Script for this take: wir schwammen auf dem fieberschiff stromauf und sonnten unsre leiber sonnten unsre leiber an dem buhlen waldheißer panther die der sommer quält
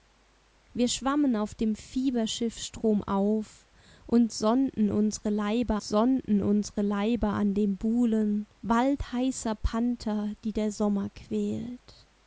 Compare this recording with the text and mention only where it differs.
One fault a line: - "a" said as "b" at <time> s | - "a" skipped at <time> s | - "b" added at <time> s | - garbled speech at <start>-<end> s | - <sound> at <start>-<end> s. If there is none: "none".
none